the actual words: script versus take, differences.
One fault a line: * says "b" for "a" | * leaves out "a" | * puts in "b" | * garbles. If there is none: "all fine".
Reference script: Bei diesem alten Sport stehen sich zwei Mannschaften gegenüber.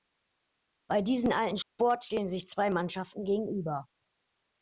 all fine